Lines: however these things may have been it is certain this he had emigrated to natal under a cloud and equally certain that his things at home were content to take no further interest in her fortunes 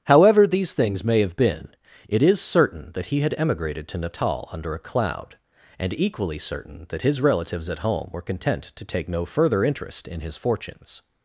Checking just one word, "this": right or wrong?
wrong